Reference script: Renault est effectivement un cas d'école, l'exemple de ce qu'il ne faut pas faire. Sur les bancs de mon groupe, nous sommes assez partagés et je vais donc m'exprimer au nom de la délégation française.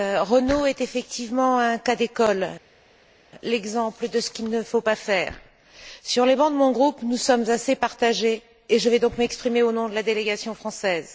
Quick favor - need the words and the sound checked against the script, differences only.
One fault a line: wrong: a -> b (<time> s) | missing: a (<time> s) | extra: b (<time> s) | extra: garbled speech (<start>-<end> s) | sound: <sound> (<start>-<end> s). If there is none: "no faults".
no faults